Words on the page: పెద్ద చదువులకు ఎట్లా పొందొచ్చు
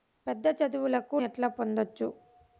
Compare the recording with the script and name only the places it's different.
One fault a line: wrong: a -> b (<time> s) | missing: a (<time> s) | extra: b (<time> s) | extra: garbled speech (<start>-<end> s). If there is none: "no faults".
no faults